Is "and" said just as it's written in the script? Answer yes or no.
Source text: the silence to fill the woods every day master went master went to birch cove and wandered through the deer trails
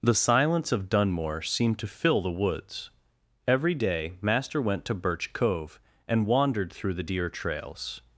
yes